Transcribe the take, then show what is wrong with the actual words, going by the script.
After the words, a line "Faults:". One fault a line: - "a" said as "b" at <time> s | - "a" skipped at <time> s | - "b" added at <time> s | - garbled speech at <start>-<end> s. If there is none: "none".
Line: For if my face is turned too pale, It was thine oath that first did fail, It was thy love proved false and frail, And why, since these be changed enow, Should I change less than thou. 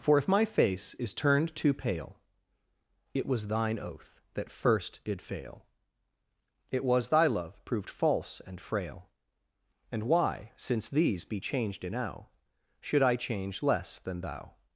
For if my face is turned too pale, It was thine oath that first did fail, It was thy love proved false and frail, And why, since these be changed enow, Should I change less than thou.
Faults:
none